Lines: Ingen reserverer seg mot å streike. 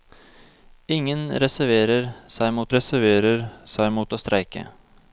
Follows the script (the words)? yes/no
no